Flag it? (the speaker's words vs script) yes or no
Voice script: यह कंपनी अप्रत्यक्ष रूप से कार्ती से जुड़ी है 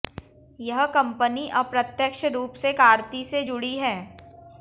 no